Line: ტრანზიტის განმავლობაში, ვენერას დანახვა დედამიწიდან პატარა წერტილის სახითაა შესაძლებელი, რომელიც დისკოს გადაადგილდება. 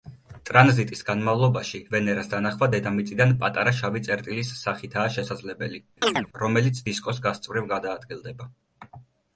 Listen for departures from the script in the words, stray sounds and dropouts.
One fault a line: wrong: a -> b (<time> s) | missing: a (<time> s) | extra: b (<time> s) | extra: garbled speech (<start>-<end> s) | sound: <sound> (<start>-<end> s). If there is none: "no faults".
extra: შავი (3.8 s)
sound: chirp (6.0-6.3 s)
extra: გასწვრივ (7.3 s)